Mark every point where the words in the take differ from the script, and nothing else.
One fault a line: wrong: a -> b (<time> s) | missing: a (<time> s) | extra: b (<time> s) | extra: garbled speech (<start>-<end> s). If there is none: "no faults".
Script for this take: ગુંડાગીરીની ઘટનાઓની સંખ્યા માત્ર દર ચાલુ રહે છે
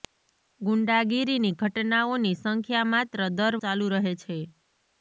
no faults